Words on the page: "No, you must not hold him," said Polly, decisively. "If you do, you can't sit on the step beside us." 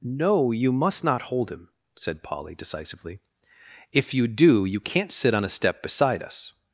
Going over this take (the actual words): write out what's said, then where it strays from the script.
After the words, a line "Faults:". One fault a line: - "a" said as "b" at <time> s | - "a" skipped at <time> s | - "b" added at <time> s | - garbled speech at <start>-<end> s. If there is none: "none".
"No, you must not hold him," said Polly, decisively. "If you do, you can't sit on a step beside us."
Faults:
- "the" said as "a" at 5.4 s